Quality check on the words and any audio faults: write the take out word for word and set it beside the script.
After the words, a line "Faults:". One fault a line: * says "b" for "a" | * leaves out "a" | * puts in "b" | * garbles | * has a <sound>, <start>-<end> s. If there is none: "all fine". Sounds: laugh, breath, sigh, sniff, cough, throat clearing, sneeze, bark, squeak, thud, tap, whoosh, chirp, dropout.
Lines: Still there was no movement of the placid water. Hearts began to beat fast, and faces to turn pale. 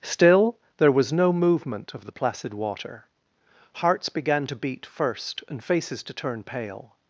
Still there was no movement of the placid water. Hearts began to beat first, and faces to turn pale.
Faults:
* says "first" for "fast"